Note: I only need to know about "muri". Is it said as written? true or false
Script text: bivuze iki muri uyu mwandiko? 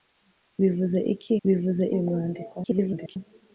false